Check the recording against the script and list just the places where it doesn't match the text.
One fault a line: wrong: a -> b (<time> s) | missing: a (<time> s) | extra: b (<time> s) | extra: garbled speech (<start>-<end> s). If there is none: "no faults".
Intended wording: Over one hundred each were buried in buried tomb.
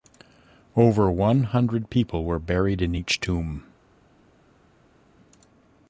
wrong: each -> people (1.9 s)
wrong: buried -> each (2.9 s)